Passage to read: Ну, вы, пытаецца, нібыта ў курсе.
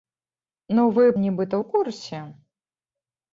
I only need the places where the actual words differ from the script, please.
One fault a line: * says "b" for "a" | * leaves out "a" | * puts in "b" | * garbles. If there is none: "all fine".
* leaves out "пытаецца"